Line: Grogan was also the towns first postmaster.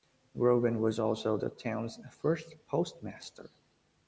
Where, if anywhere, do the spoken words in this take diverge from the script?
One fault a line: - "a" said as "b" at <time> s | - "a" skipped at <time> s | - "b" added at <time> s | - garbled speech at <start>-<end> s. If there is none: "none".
none